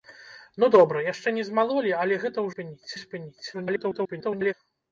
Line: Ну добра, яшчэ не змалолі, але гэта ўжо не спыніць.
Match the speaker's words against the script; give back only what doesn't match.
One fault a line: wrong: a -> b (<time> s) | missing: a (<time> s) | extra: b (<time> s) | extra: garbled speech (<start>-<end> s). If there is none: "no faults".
wrong: ўжо -> спыніць (2.5 s)
extra: garbled speech (3.5-4.5 s)